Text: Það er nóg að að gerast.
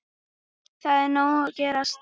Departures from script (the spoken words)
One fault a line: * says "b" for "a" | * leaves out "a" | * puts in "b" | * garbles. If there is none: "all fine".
* leaves out "að"